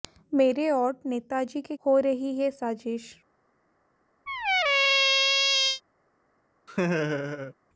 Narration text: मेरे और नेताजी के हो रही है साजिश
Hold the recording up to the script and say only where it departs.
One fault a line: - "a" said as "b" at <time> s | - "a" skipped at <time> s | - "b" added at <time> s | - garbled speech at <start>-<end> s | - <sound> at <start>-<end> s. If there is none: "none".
- squeak at 4.3-5.8 s
- laugh at 6.7-7.5 s